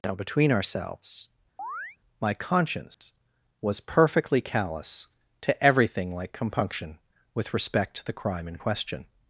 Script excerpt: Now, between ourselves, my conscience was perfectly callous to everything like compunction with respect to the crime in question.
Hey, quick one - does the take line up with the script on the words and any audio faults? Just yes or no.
no